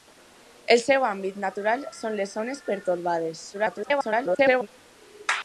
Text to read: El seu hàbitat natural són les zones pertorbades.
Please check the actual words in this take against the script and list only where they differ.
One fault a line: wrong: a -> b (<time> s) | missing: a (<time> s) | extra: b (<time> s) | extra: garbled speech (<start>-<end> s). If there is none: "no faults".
extra: garbled speech (3.5-4.7 s)